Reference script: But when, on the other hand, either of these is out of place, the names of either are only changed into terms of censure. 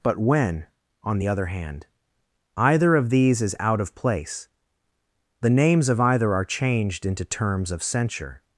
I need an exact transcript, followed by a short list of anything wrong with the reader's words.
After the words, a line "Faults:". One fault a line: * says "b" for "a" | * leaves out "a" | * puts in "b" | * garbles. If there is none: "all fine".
But when, on the other hand, either of these is out of place, the names of either are changed into terms of censure.
Faults:
* leaves out "only"